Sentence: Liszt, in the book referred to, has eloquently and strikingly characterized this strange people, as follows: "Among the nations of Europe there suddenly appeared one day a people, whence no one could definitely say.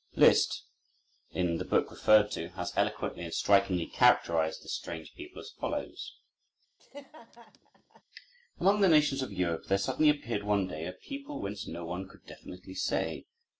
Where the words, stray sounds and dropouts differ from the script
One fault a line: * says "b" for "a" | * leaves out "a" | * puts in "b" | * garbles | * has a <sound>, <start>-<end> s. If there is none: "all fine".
* has a laugh, 6.8-8.0 s